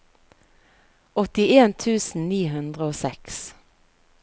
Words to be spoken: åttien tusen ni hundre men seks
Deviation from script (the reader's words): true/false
true